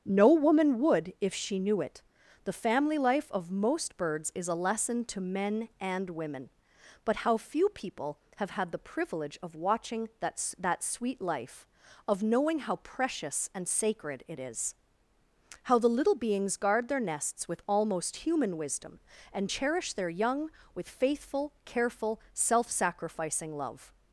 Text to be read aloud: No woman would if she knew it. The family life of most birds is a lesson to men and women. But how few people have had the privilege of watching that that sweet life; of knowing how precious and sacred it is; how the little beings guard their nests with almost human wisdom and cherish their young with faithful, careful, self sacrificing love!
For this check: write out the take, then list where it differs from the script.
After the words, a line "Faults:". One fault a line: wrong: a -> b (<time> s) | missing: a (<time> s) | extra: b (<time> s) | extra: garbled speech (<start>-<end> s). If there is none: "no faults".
No woman would if she knew it. The family life of most birds is a lesson to men and women. But how few people have had the privilege of watching that that sweet life; of knowing how precious and sacred it is; how the little beings guard their nests with almost human wisdom and cherish their young with faithful, careful, self sacrificing love!
Faults:
no faults